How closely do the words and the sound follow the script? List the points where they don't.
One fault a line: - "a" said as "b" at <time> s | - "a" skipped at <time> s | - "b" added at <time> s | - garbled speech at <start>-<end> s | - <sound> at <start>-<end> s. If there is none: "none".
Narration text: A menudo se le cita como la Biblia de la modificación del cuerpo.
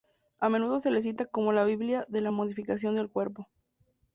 none